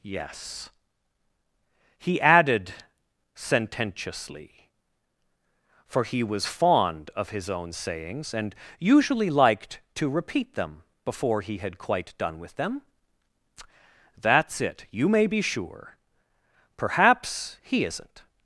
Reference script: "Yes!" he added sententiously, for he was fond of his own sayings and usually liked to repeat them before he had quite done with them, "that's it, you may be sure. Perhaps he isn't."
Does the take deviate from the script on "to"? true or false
false